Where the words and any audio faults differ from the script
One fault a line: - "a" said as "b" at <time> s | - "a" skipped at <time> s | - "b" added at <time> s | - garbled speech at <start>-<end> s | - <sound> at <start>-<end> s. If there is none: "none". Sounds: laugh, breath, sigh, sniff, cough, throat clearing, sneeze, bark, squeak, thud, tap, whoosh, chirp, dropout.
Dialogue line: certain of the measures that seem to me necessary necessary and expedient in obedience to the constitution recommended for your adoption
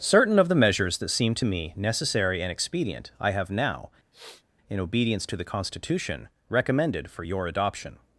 - "necessary" skipped at 2.4 s
- "i have now" added at 3.2 s
- sniff at 4.1-4.4 s